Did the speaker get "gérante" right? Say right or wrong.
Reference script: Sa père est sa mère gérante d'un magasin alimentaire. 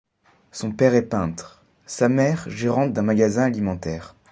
right